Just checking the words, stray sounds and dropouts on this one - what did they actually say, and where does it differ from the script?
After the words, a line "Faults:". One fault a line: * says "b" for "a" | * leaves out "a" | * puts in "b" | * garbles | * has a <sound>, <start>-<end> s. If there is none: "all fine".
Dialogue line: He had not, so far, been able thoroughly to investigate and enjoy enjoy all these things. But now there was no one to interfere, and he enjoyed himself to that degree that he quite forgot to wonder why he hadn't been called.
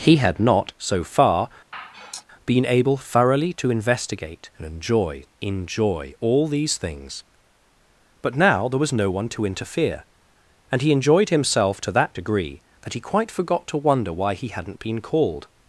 He had not, so far, been able thoroughly to investigate and enjoy enjoy all these things. But now there was no one to interfere, and he enjoyed himself to that degree that he quite forgot to wonder why he hadn't been called.
Faults:
* has a sigh, 1.7-2.2 s